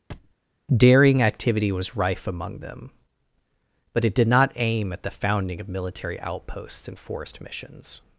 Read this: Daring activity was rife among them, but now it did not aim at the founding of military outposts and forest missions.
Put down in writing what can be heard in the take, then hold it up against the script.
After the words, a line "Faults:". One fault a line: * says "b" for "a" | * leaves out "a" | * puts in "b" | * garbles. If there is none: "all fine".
Daring activity was rife among them, but it did not aim at the founding of military outposts and forest missions.
Faults:
* leaves out "now"